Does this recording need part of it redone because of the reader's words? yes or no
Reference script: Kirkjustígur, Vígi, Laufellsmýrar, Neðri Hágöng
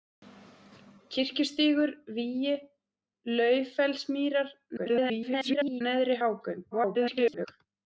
yes